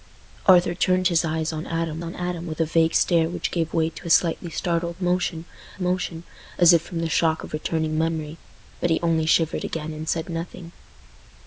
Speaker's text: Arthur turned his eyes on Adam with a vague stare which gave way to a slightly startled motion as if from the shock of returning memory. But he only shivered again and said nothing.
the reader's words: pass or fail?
fail